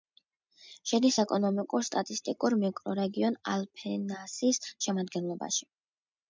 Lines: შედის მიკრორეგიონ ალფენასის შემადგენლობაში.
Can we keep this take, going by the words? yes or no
no